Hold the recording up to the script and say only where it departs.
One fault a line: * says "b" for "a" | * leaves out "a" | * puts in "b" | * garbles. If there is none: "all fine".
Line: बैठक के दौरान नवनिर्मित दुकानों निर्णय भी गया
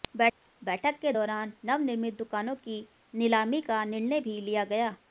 * puts in "की नीलामी का"
* puts in "लिया"